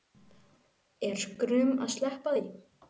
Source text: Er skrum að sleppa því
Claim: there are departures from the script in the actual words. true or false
false